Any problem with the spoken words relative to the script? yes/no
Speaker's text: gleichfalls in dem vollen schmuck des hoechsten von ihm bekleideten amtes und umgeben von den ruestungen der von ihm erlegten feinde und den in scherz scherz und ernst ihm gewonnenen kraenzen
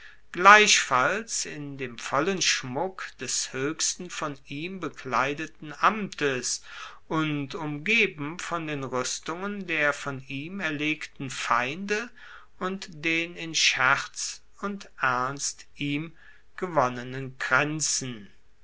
yes